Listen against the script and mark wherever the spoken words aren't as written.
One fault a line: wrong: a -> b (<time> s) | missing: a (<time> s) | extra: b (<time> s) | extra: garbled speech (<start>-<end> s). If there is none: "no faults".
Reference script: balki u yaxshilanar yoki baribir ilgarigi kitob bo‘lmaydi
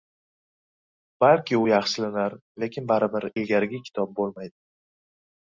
wrong: yoki -> lekin (2.6 s)